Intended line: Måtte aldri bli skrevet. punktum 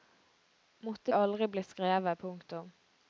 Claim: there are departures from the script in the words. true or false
false